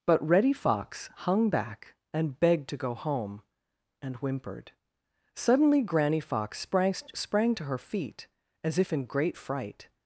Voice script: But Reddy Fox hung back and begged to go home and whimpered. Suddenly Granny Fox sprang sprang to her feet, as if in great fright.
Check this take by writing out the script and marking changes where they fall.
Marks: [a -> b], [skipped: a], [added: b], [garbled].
But Reddy Fox hung back and begged to go home and whimpered. Suddenly Granny Fox sprang sprang to her feet, as if in great fright.